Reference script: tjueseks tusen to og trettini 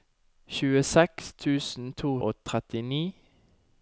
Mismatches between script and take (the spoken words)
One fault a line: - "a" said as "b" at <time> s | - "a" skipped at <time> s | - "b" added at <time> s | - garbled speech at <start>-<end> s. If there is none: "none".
none